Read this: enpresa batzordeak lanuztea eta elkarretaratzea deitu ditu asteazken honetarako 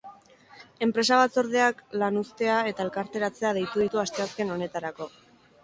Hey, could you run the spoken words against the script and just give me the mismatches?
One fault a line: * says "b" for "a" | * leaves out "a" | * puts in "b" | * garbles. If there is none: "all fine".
all fine